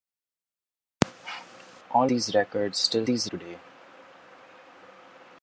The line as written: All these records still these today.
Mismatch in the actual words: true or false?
false